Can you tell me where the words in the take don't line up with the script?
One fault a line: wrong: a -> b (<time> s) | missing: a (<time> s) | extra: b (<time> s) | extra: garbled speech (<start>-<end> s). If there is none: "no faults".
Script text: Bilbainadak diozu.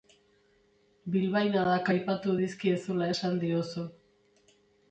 extra: aipatu dizkiezula esan (1.9 s)